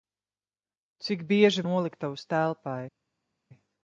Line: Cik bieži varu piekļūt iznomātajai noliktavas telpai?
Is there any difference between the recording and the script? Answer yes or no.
yes